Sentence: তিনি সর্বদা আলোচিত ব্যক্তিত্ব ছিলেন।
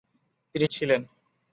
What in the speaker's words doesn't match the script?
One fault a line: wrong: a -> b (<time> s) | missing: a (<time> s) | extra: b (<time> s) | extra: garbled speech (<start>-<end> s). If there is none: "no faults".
missing: সর্বদা আলোচিত ব্যক্তিত্ব (0.7 s)